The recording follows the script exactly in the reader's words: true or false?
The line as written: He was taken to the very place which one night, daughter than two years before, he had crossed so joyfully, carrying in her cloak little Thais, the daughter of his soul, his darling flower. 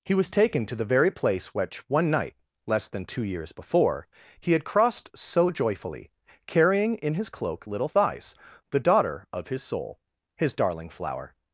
false